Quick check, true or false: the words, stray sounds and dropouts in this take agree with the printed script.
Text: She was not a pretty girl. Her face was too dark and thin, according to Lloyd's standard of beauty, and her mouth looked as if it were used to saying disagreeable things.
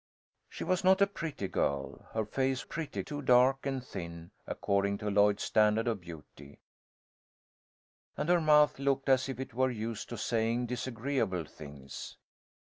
false